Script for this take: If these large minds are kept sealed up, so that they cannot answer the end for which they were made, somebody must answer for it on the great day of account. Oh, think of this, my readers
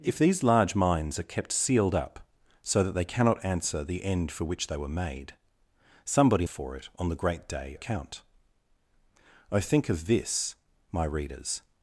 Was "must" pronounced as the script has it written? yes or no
no